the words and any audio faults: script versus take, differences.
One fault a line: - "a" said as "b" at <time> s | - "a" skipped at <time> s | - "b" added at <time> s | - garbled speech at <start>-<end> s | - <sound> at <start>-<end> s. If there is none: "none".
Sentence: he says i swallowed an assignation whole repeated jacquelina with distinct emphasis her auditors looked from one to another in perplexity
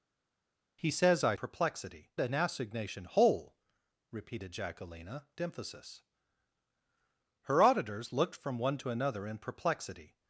- "swallowed" said as "perplexity" at 1.3 s
- "with distinct" skipped at 5.3 s